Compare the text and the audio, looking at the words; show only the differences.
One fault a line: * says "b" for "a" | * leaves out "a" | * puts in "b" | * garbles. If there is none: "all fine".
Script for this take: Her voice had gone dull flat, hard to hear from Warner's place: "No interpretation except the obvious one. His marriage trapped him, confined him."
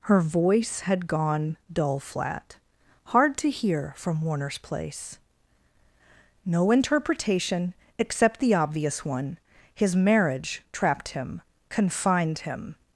all fine